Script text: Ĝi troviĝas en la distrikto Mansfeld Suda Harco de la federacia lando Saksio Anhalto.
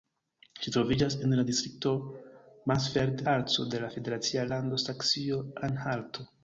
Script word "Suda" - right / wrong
wrong